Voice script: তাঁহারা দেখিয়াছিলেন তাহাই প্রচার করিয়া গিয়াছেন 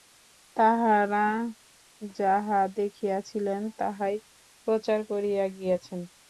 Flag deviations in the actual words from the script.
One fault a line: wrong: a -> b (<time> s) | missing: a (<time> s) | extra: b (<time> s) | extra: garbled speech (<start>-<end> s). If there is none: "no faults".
extra: যাহা (2.2 s)